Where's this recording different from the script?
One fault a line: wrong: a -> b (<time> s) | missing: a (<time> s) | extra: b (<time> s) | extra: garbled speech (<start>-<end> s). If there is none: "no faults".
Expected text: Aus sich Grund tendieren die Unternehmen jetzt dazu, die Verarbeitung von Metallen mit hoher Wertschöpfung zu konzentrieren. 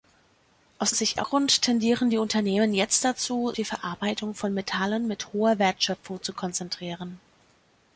no faults